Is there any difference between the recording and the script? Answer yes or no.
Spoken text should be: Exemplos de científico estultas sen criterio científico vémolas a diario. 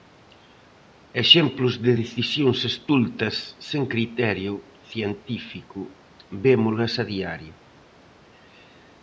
yes